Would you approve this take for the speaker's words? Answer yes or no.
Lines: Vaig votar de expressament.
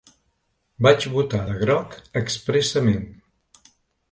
no